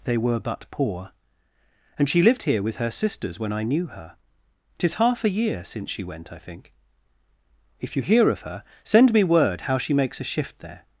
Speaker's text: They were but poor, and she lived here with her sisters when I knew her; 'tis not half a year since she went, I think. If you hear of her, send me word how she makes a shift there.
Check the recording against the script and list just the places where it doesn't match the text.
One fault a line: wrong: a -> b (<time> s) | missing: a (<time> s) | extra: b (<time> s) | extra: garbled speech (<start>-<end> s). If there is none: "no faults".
missing: not (5.0 s)